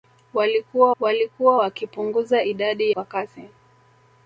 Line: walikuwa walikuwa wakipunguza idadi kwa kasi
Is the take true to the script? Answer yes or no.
yes